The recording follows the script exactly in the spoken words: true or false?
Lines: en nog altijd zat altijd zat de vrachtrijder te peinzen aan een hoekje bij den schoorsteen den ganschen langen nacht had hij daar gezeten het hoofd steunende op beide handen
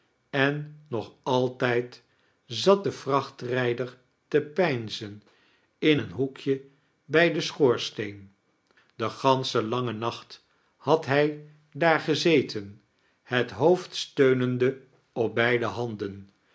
false